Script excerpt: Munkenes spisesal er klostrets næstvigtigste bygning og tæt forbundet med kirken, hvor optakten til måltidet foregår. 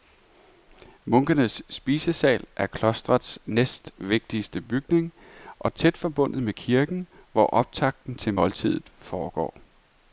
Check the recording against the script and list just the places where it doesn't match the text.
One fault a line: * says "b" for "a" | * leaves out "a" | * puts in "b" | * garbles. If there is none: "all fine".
all fine